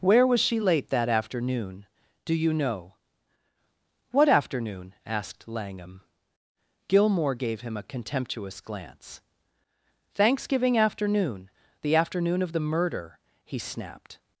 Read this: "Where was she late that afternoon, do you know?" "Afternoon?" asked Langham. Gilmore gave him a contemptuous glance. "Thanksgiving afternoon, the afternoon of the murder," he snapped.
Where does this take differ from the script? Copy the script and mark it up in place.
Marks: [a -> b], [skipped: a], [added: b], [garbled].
"Where was she late that afternoon, do you know?" [added: What] "Afternoon?" asked Langham. Gilmore gave him a contemptuous glance. "Thanksgiving afternoon, the afternoon of the murder," he snapped.